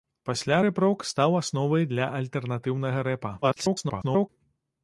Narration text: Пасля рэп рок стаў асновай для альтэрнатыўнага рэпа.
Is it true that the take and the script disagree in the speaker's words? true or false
true